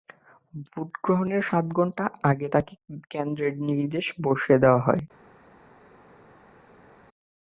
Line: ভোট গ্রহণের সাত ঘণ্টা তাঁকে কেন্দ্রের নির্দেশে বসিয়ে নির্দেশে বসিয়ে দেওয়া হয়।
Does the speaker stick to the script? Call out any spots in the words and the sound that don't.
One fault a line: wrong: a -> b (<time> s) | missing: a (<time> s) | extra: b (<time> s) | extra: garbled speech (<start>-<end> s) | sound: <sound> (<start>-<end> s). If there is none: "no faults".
extra: আগে (2.3 s)
missing: নির্দেশে বসিয়ে (4.6 s)